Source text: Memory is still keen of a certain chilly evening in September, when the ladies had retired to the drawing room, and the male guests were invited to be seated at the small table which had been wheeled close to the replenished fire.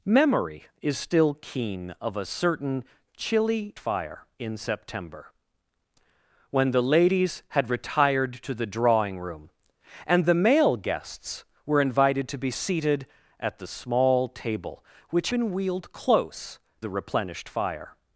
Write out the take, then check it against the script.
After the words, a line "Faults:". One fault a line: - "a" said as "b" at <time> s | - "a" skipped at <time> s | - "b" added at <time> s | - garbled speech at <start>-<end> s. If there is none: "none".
Memory is still keen of a certain chilly fire in September, when the ladies had retired to the drawing room, and the male guests were invited to be seated at the small table which been wheeled close the replenished fire.
Faults:
- "evening" said as "fire" at 3.8 s
- "had" skipped at 15.3 s
- "to" skipped at 16.6 s